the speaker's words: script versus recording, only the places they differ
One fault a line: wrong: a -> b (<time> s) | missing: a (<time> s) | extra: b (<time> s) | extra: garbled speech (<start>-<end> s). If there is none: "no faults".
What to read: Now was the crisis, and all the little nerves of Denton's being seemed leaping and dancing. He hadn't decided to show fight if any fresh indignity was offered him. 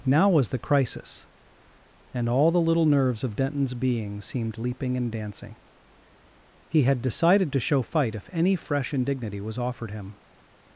wrong: hadn't -> had (6.8 s)